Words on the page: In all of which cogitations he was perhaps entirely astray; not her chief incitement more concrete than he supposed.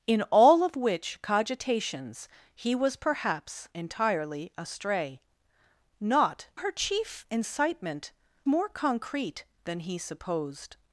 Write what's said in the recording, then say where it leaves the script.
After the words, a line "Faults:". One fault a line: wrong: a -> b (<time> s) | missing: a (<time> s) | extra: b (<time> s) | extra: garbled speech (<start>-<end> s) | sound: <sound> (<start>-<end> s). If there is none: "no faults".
In all of which cogitations he was perhaps entirely astray; not her chief incitement more concrete than he supposed.
Faults:
no faults